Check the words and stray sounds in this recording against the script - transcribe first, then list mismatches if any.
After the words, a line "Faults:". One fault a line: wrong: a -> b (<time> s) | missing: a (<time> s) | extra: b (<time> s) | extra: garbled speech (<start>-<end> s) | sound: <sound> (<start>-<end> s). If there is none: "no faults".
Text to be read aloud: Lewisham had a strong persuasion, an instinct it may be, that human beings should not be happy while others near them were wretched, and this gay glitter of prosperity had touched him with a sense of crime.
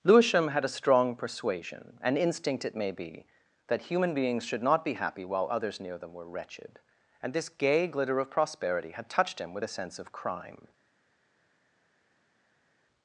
Lewisham had a strong persuasion, an instinct it may be, that human beings should not be happy while others near them were wretched, and this gay glitter of prosperity had touched him with a sense of crime.
Faults:
no faults